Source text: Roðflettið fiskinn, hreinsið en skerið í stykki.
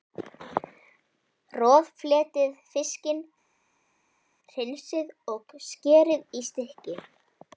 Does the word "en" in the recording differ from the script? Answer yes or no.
yes